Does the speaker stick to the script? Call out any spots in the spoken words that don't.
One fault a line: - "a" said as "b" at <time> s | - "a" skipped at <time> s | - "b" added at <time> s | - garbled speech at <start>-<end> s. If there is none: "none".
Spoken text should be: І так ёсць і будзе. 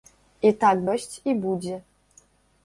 none